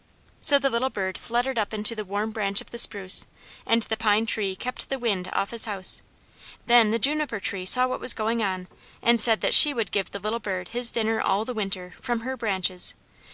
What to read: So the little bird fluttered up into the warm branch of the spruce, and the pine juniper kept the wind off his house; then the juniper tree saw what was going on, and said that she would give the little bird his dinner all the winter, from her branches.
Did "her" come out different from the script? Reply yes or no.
no